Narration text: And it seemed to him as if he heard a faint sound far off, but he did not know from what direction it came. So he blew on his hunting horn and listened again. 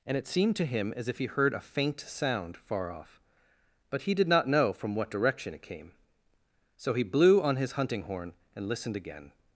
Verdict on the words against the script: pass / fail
pass